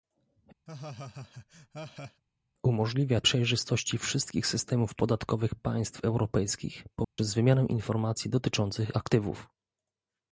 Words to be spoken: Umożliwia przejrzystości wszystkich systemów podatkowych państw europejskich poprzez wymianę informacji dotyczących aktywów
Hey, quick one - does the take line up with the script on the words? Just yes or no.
yes